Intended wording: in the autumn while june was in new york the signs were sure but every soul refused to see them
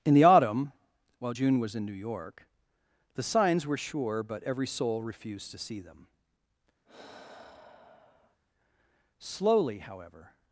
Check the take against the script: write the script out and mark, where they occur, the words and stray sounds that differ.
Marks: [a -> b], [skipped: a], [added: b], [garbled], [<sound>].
in the autumn while june was in new york the signs were sure but every soul refused to see them [sigh] [added: slowly however]